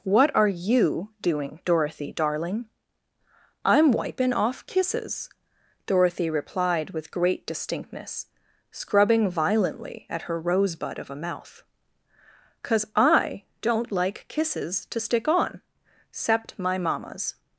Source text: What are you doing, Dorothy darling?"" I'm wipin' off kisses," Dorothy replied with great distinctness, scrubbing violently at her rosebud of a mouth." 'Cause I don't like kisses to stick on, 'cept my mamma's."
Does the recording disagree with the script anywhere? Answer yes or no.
no